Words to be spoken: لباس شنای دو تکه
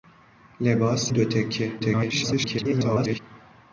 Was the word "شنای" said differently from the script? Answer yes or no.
yes